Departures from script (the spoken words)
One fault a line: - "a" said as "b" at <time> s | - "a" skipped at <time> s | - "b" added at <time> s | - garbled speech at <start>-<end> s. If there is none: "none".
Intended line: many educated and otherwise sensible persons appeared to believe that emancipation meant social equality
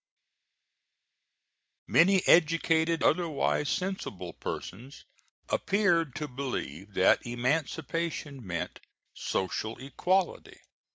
- "and" skipped at 3.0 s